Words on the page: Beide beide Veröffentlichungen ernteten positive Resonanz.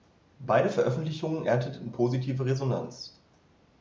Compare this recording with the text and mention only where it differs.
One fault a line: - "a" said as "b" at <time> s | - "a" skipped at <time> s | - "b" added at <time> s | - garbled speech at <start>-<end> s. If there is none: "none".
- "beide" skipped at 0.7 s